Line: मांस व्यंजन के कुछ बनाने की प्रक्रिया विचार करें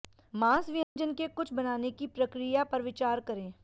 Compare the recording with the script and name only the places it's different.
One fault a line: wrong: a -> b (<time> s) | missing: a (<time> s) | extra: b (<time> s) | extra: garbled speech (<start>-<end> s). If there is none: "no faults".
extra: पर (2.6 s)